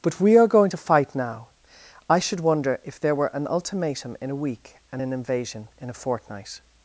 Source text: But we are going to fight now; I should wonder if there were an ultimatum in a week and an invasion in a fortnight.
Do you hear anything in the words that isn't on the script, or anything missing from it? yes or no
no